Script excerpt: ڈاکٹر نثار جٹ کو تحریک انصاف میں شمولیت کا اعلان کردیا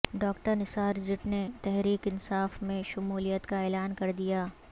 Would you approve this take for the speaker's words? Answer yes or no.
no